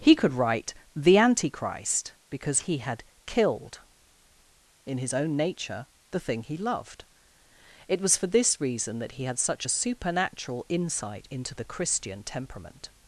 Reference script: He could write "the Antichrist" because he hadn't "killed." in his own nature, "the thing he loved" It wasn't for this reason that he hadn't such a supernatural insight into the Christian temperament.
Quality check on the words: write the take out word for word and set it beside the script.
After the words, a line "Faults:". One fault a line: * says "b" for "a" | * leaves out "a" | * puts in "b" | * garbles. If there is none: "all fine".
He could write "the Antichrist" because he had "killed." in his own nature, "the thing he loved" It was for this reason that he had such a supernatural insight into the Christian temperament.
Faults:
* says "had" for "hadn't"
* says "was" for "wasn't"
* says "had" for "hadn't"